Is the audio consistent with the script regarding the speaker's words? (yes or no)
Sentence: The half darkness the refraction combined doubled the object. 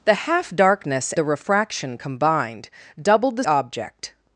yes